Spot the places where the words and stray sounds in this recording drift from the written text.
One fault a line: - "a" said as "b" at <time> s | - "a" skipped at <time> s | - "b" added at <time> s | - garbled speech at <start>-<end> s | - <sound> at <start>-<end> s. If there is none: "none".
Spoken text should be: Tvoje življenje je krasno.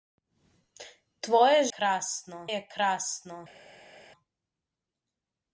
- "življenje" said as "krasno" at 1.8 s